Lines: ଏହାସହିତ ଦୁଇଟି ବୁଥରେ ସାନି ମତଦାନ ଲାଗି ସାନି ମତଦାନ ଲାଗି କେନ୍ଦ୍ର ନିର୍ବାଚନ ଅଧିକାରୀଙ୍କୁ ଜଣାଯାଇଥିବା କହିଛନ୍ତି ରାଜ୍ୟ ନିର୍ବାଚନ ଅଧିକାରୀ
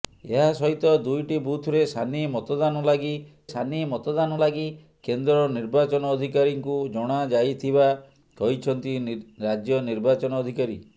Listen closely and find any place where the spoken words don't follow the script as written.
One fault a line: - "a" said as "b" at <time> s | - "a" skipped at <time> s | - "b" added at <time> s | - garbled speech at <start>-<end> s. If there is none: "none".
none